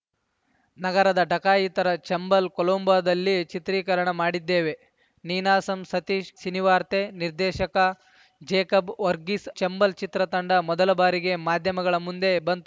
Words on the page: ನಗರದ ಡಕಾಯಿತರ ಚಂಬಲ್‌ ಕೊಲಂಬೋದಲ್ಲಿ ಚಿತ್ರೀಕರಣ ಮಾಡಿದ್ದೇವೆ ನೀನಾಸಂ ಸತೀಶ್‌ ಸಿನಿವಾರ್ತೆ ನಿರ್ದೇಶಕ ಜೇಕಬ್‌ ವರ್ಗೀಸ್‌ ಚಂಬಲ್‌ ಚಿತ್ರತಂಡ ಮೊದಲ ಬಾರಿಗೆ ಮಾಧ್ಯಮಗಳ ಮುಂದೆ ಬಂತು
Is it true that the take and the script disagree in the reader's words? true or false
false